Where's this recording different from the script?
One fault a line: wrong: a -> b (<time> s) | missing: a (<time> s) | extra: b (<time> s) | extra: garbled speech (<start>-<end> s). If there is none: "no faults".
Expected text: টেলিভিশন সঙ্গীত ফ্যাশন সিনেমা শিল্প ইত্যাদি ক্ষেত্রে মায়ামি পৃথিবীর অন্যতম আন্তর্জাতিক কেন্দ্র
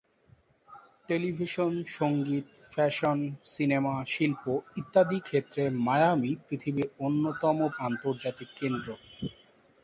no faults